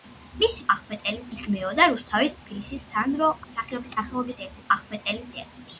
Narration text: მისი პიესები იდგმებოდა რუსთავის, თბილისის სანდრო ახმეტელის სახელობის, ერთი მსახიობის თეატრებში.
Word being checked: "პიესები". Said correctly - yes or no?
no